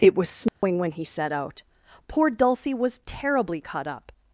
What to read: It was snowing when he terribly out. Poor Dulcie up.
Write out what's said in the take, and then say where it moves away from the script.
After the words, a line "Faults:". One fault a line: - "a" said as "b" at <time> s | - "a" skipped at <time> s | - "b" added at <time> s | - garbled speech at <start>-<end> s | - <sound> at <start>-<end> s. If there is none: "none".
It was snowing when he set out. Poor Dulcie was terribly cut up.
Faults:
- dropout at 0.5-0.6 s
- "terribly" said as "set" at 1.1 s
- "was terribly cut" added at 2.7 s